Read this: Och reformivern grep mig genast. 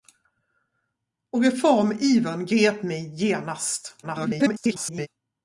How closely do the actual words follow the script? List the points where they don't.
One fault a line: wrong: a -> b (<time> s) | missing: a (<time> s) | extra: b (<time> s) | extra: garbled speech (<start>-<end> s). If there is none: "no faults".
extra: garbled speech (4.0-5.1 s)